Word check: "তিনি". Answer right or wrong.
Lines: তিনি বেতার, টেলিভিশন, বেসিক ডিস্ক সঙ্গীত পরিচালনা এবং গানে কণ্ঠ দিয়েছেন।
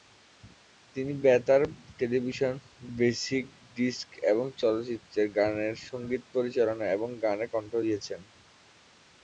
right